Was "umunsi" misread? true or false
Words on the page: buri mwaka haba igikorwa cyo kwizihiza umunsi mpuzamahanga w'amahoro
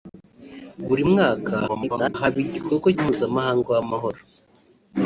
true